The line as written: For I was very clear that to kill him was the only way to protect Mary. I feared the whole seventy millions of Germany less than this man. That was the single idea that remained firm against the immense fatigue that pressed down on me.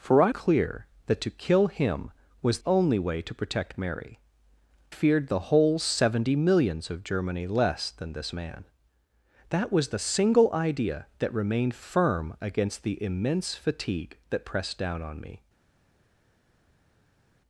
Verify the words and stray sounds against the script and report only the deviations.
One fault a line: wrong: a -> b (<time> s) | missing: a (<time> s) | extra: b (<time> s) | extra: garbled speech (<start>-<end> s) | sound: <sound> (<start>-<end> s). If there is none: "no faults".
missing: was very (0.3 s)
missing: the (2.6 s)
missing: I (4.2 s)